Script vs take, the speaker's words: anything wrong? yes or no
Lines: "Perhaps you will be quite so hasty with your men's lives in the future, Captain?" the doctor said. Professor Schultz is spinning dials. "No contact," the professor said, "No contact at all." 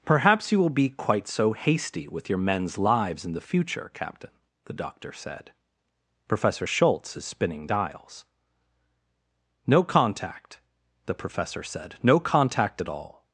no